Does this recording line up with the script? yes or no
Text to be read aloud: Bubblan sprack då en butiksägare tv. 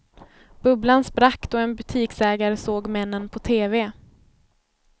no